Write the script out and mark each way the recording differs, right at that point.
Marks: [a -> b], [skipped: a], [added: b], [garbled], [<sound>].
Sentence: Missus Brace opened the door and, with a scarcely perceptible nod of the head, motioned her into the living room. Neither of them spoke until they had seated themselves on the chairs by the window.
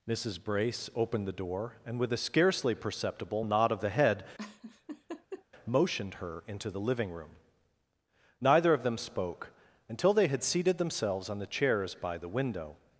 Missus Brace opened the door and, with a scarcely perceptible nod of the head, [laugh] motioned her into the living room. Neither of them spoke until they had seated themselves on the chairs by the window.